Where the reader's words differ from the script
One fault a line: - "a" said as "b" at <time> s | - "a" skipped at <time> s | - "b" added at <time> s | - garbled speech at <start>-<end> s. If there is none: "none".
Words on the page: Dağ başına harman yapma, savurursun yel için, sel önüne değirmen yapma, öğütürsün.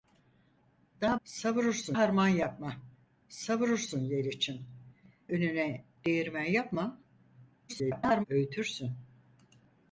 - "başına" said as "savurursun" at 1.2 s
- "sel" skipped at 4.6 s
- garbled speech at 7.7-8.2 s